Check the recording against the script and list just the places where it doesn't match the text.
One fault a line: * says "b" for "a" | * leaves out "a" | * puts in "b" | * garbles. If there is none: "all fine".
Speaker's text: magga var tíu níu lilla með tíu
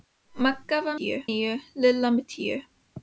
all fine